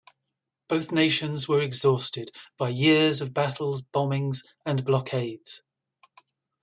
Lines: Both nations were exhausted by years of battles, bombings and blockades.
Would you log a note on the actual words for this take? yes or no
no